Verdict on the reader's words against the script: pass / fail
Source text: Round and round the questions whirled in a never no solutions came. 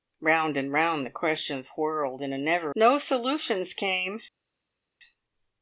pass